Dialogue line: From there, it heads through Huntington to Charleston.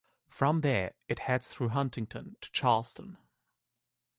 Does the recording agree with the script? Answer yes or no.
yes